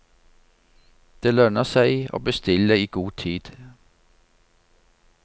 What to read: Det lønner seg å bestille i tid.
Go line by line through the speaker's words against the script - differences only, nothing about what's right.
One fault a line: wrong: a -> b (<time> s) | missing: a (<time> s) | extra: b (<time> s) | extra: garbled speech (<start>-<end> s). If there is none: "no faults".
extra: god (3.0 s)